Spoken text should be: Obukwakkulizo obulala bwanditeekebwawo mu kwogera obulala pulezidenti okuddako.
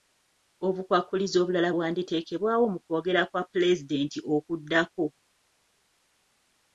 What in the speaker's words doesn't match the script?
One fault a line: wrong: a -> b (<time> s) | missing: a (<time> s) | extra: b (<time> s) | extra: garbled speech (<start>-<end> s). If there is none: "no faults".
wrong: obulala -> kwa (3.3 s)